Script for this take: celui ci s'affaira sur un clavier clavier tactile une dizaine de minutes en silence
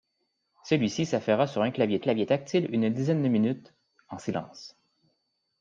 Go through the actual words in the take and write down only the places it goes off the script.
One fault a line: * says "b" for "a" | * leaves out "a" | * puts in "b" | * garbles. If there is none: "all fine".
all fine